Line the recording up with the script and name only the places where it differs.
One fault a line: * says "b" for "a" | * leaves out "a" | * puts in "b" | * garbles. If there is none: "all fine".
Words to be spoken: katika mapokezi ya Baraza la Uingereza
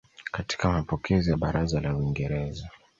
all fine